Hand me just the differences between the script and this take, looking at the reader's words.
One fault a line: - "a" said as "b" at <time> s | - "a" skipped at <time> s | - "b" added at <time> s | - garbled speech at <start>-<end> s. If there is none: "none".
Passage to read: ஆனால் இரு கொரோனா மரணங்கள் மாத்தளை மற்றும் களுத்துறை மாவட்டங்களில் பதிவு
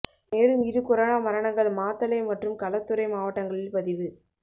- "ஆனால்" said as "மேலும்" at 0.3 s